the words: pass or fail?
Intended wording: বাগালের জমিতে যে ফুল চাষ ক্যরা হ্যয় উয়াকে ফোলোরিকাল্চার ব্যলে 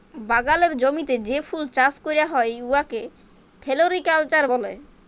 pass